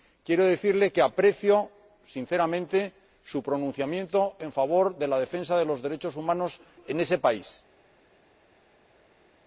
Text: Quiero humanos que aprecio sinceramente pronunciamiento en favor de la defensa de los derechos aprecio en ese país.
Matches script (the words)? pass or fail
fail